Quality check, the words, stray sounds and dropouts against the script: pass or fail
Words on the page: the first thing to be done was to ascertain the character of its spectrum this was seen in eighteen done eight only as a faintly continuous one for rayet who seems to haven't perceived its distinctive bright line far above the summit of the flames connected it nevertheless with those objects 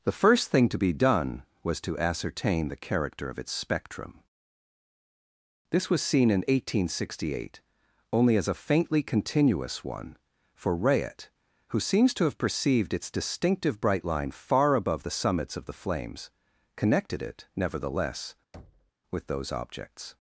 fail